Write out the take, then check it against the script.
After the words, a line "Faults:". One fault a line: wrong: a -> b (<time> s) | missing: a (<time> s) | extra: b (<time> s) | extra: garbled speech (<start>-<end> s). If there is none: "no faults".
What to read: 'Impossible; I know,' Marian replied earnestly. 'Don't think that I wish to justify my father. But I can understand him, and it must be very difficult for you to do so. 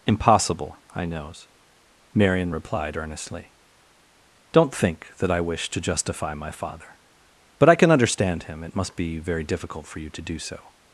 'Impossible; I knows,' Marian replied earnestly. 'Don't think that I wish to justify my father. But I can understand him, it must be very difficult for you to do so.
Faults:
wrong: know -> knows (1.1 s)
missing: and (8.6 s)